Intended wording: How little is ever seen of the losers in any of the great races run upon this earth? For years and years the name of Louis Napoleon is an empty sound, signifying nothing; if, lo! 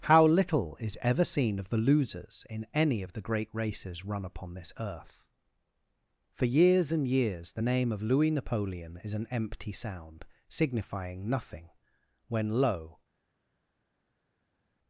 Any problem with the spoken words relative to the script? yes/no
yes